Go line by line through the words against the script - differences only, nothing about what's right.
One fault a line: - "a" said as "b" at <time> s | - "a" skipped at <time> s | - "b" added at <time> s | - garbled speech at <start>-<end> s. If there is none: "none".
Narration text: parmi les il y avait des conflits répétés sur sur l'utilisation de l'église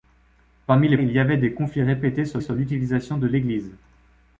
none